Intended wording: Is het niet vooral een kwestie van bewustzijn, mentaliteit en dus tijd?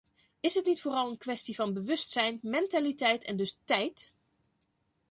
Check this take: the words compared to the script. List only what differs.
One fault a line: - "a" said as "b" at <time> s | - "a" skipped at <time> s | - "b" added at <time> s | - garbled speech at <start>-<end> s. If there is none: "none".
none